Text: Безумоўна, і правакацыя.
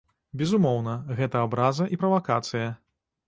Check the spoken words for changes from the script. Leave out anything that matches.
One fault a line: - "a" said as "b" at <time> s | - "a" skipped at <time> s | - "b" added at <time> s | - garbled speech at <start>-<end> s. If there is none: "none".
- "гэта абраза" added at 1.2 s